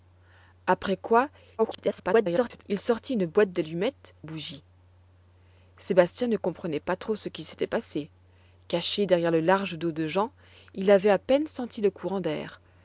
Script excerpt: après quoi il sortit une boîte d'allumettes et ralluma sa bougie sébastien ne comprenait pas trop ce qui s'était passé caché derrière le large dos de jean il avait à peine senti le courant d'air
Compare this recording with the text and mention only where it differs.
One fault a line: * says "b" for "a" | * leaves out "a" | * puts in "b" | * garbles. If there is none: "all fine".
* garbles
* leaves out "et ralluma sa"